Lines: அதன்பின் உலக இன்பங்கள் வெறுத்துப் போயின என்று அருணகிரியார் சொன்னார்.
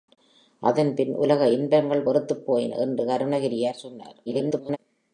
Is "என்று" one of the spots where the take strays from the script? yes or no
no